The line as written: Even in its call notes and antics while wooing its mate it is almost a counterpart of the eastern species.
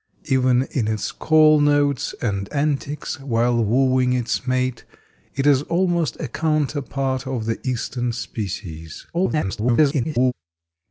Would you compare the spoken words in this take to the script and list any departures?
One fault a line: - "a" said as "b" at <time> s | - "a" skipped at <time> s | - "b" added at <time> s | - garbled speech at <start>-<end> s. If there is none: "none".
- garbled speech at 9.1-10.3 s